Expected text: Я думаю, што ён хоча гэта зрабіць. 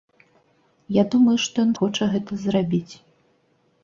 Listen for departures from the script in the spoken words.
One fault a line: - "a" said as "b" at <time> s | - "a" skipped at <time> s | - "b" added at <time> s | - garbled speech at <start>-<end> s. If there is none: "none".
none